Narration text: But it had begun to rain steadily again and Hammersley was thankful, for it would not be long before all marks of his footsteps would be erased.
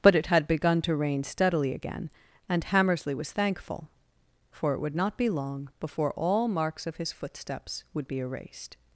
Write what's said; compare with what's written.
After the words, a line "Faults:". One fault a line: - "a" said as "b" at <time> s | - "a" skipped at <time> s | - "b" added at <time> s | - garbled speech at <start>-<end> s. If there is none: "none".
But it had begun to rain steadily again and Hammersley was thankful, for it would not be long before all marks of his footsteps would be erased.
Faults:
none